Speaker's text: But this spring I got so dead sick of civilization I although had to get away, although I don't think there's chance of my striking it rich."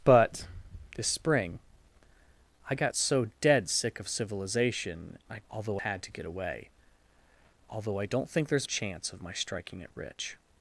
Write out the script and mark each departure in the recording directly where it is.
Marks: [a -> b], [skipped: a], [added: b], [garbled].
But this spring I got so dead sick of civilization I although had to get away, although I don't think there's chance of my striking it rich."